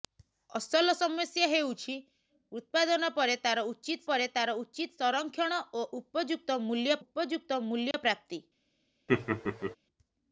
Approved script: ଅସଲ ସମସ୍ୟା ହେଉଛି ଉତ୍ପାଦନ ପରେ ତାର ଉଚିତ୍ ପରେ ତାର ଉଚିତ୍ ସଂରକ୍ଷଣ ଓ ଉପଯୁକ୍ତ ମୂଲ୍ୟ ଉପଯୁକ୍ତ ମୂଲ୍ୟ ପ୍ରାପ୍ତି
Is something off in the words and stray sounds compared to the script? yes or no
yes